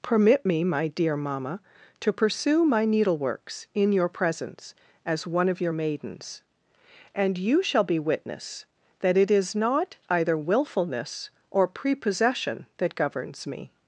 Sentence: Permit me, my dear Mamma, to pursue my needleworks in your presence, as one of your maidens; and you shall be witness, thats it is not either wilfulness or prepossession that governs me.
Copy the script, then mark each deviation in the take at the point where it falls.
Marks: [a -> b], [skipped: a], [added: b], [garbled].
Permit me, my dear Mamma, to pursue my needleworks in your presence, as one of your maidens; and you shall be witness, [thats -> that] it is not either wilfulness or prepossession that governs me.